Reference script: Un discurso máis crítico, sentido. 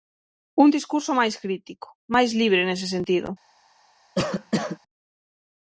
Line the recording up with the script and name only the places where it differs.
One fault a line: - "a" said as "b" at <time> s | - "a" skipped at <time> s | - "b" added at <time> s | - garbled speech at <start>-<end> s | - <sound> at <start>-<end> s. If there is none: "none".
- "máis libre nese" added at 2.1 s
- cough at 4.2-4.8 s